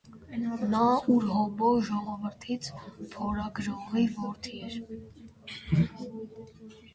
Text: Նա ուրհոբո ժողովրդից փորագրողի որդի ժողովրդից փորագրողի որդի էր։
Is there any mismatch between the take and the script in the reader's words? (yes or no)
yes